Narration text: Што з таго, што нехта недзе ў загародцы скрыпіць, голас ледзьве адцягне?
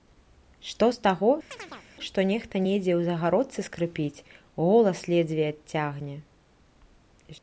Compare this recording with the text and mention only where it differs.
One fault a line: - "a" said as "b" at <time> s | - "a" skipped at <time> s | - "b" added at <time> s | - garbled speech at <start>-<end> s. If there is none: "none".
none